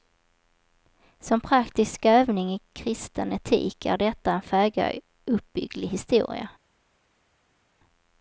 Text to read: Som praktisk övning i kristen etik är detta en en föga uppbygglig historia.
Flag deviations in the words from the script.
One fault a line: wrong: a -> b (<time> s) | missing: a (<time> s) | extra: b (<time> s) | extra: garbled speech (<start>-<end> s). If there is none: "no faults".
missing: en (4.4 s)